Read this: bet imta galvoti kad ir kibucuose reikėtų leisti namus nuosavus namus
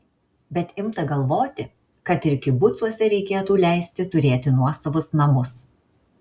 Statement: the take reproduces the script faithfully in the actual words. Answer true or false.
false